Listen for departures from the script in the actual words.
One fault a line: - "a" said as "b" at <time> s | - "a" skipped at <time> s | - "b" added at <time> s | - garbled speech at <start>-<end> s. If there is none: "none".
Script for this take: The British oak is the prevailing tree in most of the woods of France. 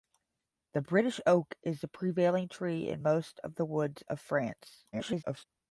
- garbled speech at 4.9-5.5 s